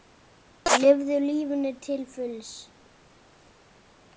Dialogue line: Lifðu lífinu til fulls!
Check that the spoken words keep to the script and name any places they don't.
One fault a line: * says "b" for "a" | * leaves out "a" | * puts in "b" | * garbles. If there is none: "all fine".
all fine